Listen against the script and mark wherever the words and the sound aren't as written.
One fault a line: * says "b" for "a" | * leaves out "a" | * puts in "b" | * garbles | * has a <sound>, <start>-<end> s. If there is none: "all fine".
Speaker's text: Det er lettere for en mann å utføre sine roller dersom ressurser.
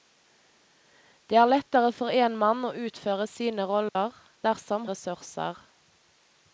* has a dropout, 3.9-4.0 s